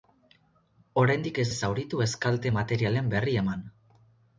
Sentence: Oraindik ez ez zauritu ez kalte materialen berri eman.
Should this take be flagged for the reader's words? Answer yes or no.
no